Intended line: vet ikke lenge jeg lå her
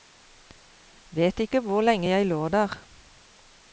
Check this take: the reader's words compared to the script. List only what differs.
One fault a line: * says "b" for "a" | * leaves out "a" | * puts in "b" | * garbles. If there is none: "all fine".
* puts in "hvor"
* says "der" for "her"